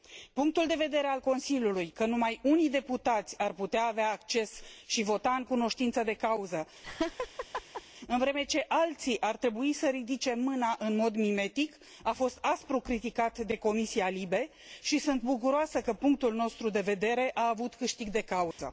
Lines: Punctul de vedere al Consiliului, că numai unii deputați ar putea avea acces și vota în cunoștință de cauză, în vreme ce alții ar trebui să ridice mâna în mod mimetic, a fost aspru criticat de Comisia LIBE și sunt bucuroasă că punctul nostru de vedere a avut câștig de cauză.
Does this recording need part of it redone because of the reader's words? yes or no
no